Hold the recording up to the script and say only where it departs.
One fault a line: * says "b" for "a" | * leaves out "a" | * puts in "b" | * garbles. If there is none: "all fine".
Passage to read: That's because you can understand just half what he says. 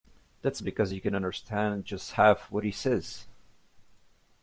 all fine